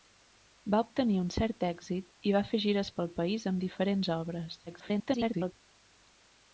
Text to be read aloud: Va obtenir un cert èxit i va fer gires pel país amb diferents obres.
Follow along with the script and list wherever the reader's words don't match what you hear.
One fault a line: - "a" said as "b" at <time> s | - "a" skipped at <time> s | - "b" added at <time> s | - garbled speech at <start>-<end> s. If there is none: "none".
- garbled speech at 4.7-5.5 s